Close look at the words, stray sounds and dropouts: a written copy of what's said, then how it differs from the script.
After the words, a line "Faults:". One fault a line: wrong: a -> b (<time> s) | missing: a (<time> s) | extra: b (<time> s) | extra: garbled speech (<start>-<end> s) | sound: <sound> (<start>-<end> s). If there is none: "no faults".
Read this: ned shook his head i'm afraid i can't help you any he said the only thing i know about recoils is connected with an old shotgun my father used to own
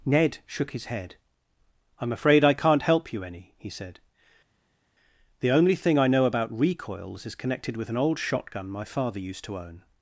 ned shook his head i'm afraid i can't help you any he said the only thing i know about recoils is connected with an old shotgun my father used to own
Faults:
no faults